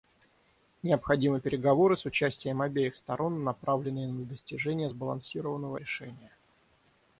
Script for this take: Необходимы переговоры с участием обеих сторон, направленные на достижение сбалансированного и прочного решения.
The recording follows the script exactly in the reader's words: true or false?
false